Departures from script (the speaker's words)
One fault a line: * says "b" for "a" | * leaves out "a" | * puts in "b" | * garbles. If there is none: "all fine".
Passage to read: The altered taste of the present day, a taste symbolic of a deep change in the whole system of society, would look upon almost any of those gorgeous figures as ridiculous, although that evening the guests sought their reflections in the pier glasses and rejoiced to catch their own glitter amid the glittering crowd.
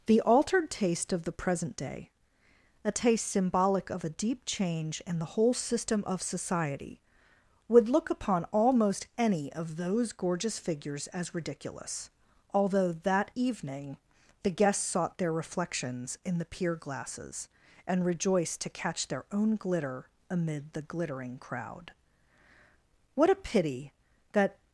* puts in "What a pity that"